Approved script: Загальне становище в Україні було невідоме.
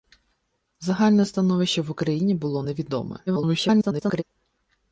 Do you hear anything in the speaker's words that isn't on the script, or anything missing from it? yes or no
yes